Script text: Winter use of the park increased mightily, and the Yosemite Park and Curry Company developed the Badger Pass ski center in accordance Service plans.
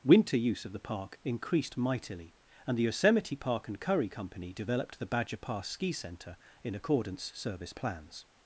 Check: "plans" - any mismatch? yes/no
no